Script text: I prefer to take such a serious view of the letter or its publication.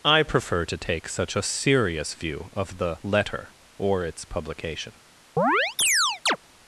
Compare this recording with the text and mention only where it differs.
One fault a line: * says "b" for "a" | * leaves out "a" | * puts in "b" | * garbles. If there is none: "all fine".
all fine